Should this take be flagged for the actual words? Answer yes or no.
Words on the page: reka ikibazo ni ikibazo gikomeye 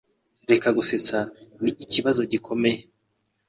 yes